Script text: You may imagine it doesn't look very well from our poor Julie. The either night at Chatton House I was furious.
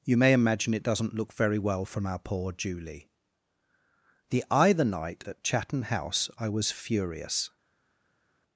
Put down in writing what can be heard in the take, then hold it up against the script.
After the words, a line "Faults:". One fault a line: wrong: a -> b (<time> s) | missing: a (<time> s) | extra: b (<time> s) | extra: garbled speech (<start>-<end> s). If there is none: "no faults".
You may imagine it doesn't look very well from our poor Julie. The either night at Chatton House I was furious.
Faults:
no faults